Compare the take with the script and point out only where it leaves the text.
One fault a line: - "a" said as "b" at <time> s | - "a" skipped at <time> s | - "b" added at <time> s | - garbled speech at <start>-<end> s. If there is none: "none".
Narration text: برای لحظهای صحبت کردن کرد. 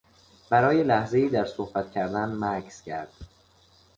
- "در" added at 1.3 s
- "مکث" added at 2.4 s